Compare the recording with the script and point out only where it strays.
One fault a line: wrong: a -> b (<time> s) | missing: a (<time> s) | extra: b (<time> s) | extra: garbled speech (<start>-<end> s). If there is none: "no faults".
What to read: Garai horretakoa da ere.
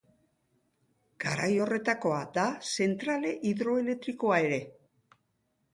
extra: zentrale hidroelektrikoa (2.8 s)